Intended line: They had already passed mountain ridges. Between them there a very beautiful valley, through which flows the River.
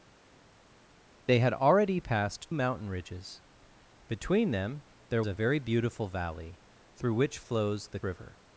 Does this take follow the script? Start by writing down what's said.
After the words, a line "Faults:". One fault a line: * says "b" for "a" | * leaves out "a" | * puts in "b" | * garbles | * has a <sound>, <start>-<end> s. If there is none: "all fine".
They had already passed mountain ridges. Between them there a very beautiful valley, through which flows the River.
Faults:
all fine